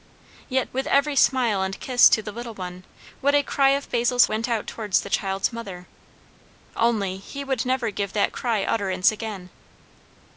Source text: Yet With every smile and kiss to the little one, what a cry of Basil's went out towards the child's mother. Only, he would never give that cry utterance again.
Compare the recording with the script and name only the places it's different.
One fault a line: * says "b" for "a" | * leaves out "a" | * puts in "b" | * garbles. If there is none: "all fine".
all fine